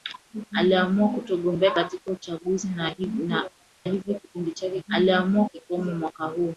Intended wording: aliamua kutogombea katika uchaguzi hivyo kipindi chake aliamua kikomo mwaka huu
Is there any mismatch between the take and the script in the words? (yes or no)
no